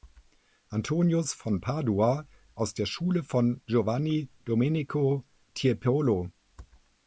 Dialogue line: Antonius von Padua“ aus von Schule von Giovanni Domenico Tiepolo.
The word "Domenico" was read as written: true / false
true